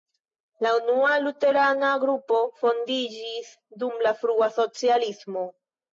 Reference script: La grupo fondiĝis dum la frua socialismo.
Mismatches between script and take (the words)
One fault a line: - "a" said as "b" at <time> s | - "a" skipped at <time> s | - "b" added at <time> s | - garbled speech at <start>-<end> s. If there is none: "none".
- "unua luterana" added at 0.8 s